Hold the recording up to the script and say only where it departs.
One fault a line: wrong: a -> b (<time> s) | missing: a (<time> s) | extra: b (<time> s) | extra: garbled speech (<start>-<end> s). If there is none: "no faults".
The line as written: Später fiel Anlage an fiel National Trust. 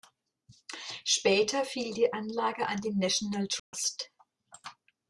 extra: die (1.9 s)
wrong: fiel -> den (2.8 s)